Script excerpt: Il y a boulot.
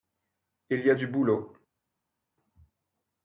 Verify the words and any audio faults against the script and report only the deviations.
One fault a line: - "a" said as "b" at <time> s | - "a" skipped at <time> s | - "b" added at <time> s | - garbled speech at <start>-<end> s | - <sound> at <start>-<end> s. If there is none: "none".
- "du" added at 0.9 s